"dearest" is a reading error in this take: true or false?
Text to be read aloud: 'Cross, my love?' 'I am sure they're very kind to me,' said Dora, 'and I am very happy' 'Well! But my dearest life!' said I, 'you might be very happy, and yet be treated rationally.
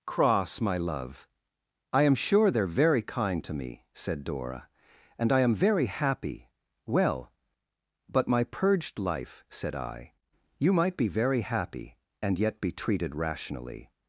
true